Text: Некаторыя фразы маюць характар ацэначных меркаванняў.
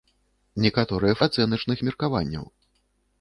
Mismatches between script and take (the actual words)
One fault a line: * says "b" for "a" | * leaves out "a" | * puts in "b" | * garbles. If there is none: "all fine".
* leaves out "фразы маюць характар"